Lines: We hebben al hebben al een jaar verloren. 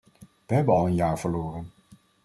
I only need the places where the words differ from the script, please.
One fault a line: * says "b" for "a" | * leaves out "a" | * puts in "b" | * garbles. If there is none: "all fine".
* leaves out "hebben al"